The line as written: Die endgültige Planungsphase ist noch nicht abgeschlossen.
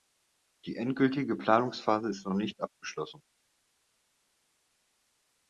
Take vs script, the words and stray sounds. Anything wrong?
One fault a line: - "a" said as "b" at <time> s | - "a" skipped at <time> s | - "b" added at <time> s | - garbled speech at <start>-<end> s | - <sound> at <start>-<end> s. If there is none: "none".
none